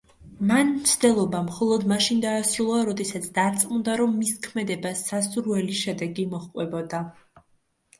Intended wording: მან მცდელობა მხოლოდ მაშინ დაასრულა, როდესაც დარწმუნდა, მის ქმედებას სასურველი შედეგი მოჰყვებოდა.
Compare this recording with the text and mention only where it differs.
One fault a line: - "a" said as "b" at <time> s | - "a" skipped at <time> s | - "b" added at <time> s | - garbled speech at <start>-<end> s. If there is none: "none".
- "რომ" added at 4.0 s